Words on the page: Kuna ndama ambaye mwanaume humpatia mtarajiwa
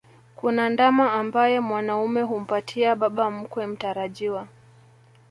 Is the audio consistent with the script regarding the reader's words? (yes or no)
no